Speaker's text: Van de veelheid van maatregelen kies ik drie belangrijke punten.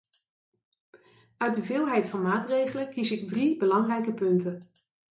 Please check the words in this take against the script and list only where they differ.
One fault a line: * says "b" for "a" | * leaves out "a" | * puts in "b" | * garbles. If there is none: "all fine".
* says "Uit" for "Van"